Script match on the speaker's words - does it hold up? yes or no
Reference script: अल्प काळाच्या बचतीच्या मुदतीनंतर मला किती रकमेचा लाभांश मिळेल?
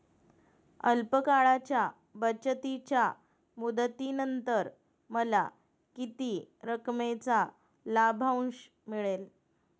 yes